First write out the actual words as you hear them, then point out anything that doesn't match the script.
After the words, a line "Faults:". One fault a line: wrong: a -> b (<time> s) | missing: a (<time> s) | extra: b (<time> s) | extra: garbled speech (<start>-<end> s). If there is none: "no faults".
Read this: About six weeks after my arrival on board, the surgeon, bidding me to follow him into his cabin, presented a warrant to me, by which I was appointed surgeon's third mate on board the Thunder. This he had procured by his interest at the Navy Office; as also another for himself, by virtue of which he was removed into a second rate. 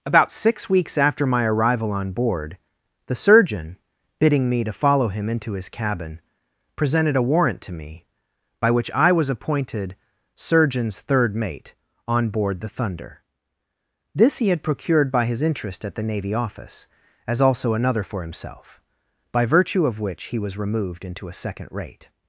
About six weeks after my arrival on board, the surgeon, bidding me to follow him into his cabin, presented a warrant to me, by which I was appointed surgeon's third mate on board the Thunder. This he had procured by his interest at the Navy Office; as also another for himself, by virtue of which he was removed into a second rate.
Faults:
no faults